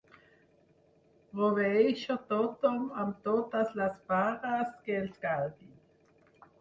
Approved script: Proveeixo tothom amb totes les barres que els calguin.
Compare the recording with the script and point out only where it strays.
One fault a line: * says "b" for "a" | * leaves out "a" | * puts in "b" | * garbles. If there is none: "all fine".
all fine